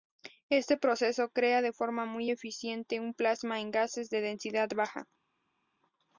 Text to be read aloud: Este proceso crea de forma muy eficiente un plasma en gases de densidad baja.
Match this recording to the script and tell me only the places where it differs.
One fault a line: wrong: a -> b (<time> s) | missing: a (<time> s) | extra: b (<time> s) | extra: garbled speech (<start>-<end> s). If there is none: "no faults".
no faults